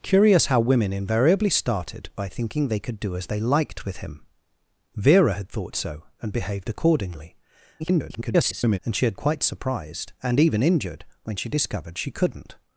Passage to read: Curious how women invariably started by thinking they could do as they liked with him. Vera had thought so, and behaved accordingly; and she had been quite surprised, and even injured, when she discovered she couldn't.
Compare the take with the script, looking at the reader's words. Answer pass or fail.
fail